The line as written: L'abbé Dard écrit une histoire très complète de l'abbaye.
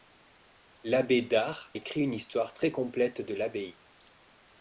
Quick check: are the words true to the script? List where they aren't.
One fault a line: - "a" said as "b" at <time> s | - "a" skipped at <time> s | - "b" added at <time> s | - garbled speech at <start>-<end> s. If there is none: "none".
none